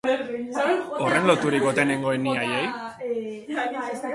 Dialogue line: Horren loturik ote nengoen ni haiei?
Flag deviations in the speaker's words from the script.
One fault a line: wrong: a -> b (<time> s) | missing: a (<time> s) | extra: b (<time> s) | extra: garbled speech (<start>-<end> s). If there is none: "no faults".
no faults